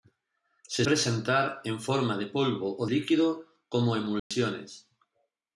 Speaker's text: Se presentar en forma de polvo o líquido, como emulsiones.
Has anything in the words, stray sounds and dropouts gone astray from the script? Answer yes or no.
yes